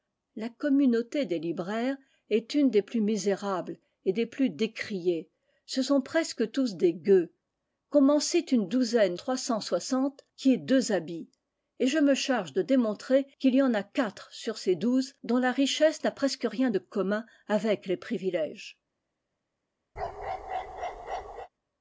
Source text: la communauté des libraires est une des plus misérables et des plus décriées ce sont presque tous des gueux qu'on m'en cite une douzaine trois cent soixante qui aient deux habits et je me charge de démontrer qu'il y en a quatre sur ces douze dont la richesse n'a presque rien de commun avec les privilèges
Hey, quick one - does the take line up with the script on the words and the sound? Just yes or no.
no